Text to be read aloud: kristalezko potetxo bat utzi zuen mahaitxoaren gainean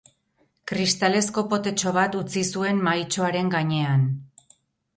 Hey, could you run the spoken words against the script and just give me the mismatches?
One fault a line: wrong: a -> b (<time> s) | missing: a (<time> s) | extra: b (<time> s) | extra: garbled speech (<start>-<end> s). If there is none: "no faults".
no faults